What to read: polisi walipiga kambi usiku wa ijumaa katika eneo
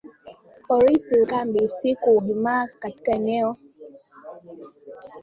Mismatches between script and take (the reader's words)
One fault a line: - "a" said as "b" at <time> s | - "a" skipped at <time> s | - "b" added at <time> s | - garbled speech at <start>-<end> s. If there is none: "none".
- "walipiga" skipped at 1.2 s
- "wa" skipped at 2.2 s